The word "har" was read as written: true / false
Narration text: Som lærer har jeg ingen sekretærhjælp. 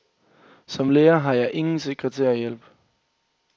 true